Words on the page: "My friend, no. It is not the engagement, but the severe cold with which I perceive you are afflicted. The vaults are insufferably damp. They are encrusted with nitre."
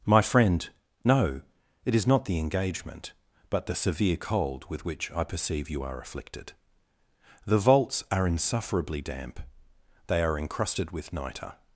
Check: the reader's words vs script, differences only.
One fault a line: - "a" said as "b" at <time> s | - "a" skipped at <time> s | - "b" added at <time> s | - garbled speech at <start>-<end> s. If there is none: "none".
none